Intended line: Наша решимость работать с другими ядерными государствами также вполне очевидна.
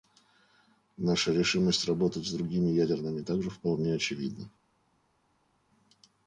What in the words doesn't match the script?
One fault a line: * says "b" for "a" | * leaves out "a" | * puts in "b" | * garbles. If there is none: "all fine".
* leaves out "государствами"